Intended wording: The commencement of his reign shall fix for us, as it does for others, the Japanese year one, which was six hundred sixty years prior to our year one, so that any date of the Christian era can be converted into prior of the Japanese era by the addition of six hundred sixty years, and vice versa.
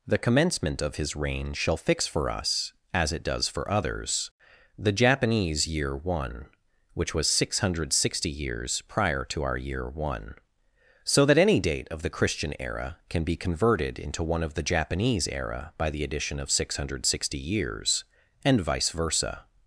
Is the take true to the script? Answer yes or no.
no